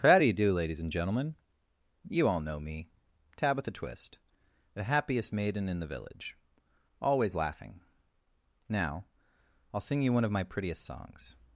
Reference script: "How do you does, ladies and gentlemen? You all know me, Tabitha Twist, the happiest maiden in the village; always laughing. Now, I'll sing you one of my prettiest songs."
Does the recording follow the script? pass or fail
fail